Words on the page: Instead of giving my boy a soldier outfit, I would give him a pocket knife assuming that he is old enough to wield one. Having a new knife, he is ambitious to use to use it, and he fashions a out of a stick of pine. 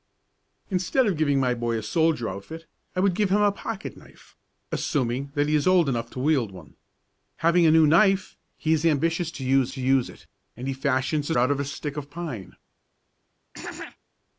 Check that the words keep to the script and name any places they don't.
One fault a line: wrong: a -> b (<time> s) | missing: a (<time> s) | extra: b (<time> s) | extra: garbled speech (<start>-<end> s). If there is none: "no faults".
no faults